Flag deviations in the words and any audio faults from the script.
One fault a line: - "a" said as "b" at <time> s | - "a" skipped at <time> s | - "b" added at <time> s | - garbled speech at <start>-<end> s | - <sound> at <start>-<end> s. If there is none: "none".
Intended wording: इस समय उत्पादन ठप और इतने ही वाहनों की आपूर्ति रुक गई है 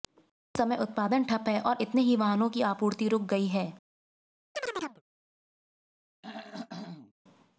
- "है" added at 1.5 s
- chirp at 4.5-5.0 s
- throat clearing at 6.2-7.1 s